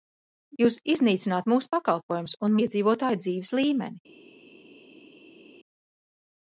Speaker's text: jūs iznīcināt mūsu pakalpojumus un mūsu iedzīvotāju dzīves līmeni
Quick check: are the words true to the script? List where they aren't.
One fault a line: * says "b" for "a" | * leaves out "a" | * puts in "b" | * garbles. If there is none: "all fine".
* leaves out "mūsu"